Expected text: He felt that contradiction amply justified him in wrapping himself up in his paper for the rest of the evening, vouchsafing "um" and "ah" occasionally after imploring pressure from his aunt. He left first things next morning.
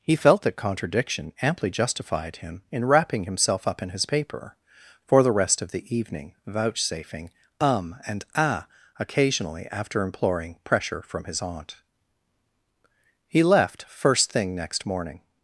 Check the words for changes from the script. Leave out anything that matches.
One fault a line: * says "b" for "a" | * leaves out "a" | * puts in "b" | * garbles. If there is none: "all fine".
* says "thing" for "things"